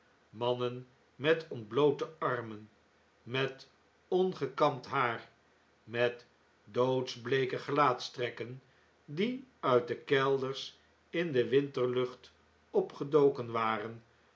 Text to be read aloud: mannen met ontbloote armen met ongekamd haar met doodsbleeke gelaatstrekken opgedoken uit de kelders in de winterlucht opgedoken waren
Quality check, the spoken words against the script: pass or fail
fail